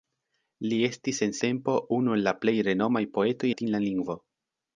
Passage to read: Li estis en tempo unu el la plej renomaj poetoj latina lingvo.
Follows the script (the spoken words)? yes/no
yes